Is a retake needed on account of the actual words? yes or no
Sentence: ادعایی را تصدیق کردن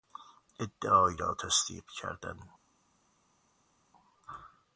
no